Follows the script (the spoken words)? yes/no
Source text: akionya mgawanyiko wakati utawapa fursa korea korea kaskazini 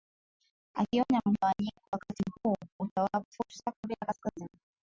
no